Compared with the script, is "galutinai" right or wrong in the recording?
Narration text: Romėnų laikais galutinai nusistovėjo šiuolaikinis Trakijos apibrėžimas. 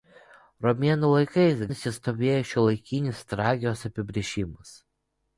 wrong